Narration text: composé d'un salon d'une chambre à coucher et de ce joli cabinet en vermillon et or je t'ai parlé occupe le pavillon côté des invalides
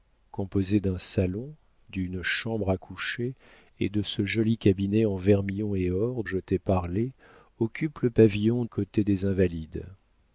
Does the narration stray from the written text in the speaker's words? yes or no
no